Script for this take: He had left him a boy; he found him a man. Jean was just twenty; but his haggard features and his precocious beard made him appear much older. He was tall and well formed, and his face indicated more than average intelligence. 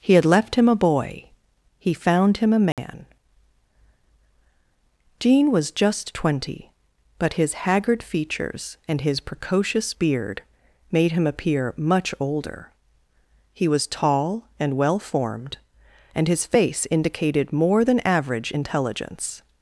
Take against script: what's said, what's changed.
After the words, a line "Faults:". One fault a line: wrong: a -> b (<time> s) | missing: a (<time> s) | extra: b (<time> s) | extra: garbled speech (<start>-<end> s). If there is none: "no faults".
He had left him a boy; he found him a man. Jean was just twenty; but his haggard features and his precocious beard made him appear much older. He was tall and well formed, and his face indicated more than average intelligence.
Faults:
no faults